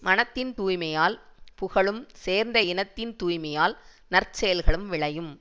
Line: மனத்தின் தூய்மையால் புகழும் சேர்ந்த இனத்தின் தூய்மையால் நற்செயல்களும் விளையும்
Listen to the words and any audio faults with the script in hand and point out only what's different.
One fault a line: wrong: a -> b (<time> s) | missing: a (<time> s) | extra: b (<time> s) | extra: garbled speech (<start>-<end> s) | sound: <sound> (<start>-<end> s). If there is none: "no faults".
no faults